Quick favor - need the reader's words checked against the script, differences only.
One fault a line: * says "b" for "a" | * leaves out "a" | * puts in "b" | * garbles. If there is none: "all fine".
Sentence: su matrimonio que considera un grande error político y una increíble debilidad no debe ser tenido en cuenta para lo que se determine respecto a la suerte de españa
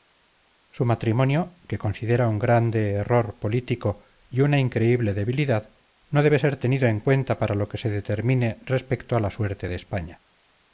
all fine